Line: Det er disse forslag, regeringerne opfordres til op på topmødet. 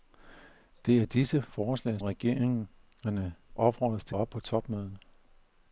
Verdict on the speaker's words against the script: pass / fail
pass